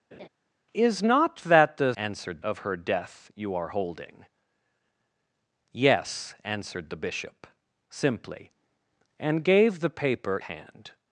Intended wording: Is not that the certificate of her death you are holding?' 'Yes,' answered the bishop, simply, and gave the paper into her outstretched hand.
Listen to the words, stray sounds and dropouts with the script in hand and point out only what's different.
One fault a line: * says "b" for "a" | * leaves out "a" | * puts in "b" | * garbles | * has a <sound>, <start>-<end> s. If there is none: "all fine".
* has a laugh, 0.1-0.3 s
* says "answered" for "certificate"
* leaves out "into her outstretched"